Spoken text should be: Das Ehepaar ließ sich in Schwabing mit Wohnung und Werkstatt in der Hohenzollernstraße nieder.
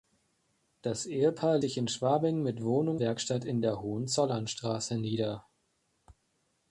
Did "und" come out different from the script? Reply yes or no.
yes